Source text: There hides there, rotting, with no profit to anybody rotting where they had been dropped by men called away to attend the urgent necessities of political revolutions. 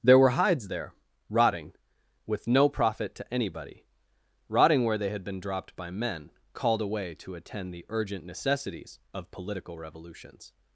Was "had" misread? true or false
false